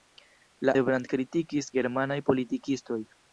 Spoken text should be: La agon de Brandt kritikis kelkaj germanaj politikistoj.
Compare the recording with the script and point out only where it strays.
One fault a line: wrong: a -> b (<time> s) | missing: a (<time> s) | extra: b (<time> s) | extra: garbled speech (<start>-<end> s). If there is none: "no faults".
missing: agon (0.7 s)
missing: kelkaj (1.7 s)